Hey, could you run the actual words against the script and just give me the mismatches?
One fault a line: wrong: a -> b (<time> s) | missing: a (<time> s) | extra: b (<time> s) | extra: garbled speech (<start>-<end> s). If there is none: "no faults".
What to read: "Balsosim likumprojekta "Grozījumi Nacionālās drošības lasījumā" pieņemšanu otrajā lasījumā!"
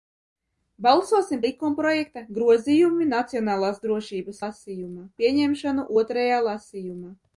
no faults